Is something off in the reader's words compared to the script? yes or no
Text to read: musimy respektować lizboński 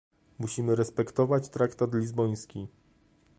yes